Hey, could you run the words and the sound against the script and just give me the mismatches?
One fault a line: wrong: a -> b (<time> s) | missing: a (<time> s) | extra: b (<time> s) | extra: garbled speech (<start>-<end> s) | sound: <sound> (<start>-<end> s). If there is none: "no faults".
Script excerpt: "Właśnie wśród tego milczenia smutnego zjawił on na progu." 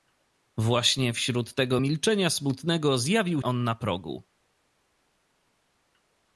no faults